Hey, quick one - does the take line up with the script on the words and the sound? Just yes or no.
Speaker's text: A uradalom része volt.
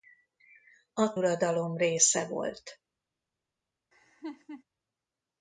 no